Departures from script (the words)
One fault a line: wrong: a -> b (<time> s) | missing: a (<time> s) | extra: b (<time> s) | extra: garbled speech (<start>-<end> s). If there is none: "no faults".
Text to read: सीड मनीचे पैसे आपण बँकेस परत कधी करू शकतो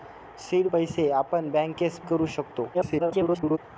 missing: मनीचे (0.7 s)
missing: परत कधी (2.0 s)
extra: garbled speech (2.7-3.6 s)